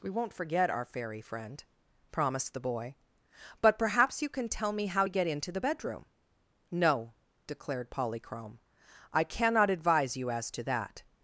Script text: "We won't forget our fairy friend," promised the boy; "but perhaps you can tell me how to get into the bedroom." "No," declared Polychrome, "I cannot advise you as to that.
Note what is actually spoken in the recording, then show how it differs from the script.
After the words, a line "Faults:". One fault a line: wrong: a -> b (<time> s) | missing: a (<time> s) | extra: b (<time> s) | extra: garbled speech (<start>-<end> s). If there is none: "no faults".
"We won't forget our fairy friend," promised the boy; "but perhaps you can tell me how to get into the bedroom." "No," declared Polychrome, "I cannot advise you as to that.
Faults:
no faults